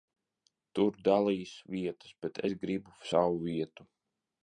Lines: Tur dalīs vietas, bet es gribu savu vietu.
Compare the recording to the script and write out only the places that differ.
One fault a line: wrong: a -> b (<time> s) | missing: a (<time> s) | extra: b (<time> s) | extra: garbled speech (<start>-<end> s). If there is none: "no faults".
no faults